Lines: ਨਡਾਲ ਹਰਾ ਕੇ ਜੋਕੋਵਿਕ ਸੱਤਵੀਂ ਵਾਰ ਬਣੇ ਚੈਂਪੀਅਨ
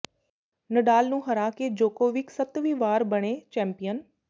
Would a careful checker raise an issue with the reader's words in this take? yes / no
yes